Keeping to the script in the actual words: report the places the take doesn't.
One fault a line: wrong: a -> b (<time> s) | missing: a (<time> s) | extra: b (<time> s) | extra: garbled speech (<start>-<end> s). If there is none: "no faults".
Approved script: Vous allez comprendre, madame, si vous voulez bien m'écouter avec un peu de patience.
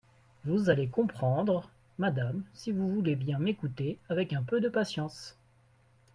no faults